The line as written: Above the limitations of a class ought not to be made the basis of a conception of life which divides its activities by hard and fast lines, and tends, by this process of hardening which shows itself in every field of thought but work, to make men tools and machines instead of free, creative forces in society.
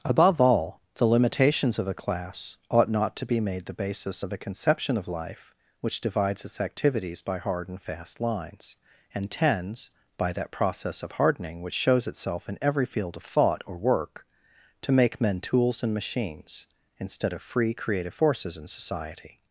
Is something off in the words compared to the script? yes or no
yes